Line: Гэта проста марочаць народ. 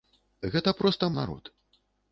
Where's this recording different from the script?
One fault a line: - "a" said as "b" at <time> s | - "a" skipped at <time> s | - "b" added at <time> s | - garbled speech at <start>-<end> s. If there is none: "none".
- "марочаць" skipped at 1.1 s